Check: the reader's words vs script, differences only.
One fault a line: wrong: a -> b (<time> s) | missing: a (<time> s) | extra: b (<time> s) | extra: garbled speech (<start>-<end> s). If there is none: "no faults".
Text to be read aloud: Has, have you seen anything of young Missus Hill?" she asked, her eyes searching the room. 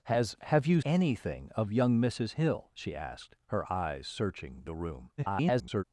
missing: seen (0.8 s)
extra: garbled speech (5.2-5.8 s)